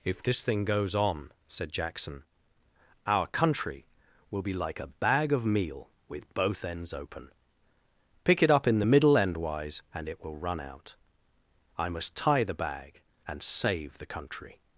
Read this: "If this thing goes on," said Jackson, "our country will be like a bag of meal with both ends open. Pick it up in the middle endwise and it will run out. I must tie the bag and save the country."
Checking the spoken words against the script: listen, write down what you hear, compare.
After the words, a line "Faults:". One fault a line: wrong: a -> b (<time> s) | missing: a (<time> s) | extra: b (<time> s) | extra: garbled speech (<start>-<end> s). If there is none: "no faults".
"If this thing goes on," said Jackson, "our country will be like a bag of meal with both ends open. Pick it up in the middle endwise and it will run out. I must tie the bag and save the country."
Faults:
no faults